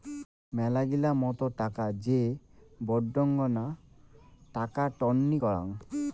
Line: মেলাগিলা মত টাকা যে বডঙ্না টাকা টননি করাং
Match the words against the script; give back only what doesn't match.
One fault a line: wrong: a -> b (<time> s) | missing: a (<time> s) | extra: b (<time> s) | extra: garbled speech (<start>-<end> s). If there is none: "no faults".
no faults